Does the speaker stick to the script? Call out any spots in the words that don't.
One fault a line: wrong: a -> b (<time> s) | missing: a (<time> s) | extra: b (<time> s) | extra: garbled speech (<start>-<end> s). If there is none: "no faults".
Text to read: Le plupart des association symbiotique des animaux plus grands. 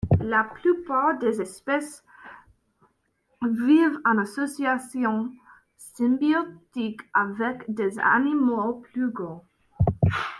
wrong: Le -> La (0.2 s)
extra: espèces vivent en (1.4 s)
extra: avec (7.1 s)